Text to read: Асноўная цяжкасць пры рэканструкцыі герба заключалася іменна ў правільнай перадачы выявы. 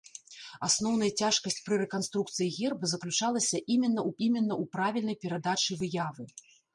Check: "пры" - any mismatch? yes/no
no